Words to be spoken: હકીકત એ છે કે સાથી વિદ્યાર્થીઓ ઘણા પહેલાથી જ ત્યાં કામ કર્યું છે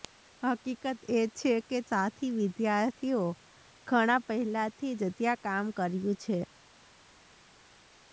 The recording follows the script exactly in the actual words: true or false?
true